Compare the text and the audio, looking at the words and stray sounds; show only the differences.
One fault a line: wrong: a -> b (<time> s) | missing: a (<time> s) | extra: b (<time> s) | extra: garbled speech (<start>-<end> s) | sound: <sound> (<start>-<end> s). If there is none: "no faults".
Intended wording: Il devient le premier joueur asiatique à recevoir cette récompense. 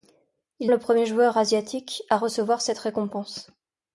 missing: devient (0.7 s)